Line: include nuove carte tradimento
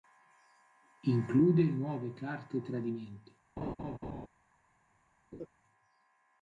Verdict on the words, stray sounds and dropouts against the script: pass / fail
fail